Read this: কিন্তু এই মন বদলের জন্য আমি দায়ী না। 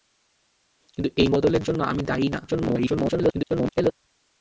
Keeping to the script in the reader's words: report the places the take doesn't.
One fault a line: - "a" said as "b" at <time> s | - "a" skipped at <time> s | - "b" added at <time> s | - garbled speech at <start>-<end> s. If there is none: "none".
- "মন" skipped at 1.3 s
- garbled speech at 2.5-3.9 s